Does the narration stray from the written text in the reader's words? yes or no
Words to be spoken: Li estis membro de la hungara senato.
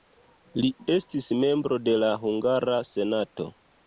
no